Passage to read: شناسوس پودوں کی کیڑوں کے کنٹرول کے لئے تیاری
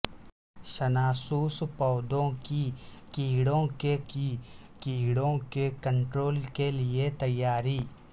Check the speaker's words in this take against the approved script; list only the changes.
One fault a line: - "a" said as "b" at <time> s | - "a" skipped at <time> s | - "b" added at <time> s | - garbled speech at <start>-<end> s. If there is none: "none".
- "کی کیڑوں کے" added at 4.1 s